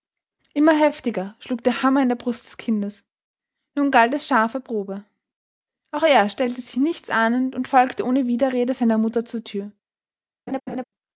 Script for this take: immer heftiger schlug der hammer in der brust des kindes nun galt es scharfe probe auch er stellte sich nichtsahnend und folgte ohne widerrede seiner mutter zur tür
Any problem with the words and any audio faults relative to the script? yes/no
yes